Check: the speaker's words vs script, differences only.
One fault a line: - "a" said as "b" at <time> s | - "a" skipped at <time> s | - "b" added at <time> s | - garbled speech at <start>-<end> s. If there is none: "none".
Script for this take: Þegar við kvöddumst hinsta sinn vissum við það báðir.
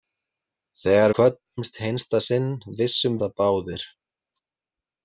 - "við" skipped at 1.1 s
- "við" skipped at 3.2 s